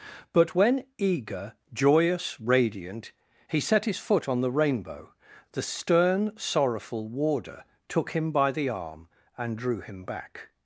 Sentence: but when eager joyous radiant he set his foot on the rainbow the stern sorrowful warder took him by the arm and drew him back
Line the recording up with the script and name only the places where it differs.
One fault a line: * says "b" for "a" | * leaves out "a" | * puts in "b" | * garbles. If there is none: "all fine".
all fine